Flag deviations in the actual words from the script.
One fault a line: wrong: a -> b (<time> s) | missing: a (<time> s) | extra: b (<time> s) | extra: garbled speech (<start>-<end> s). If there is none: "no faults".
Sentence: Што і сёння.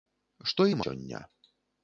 no faults